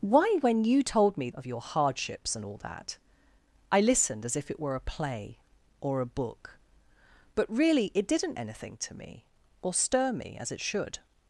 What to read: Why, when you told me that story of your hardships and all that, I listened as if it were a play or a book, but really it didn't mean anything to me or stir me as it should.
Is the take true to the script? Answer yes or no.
no